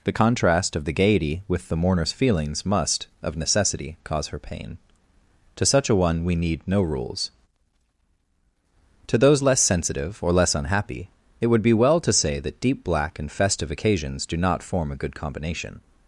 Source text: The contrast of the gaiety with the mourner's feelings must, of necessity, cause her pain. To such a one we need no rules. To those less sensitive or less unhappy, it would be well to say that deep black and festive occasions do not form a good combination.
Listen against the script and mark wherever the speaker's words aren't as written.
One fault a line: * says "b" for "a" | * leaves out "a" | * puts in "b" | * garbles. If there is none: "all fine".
all fine